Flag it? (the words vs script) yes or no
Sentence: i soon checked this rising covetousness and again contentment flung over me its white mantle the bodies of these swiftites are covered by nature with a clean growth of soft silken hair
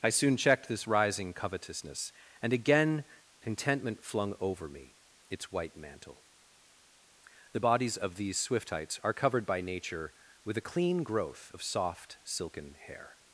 no